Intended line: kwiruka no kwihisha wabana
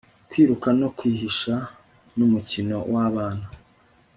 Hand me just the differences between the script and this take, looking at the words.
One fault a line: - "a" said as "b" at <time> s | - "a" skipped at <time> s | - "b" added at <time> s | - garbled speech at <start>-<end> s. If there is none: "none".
- "numukino" added at 2.1 s